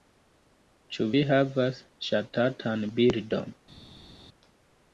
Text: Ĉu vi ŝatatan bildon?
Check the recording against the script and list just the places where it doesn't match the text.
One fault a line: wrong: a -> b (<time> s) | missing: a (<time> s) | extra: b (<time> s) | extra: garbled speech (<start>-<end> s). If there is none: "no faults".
extra: havas (1.3 s)